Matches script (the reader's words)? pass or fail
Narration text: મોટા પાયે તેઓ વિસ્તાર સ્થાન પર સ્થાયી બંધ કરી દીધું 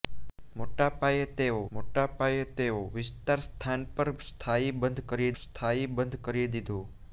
fail